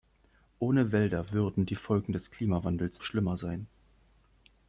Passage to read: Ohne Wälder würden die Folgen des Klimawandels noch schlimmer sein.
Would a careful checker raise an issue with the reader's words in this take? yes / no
yes